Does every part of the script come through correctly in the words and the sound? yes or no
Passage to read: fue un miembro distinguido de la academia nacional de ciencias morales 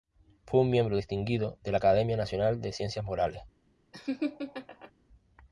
no